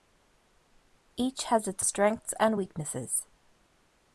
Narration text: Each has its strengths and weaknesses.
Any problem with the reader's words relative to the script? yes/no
no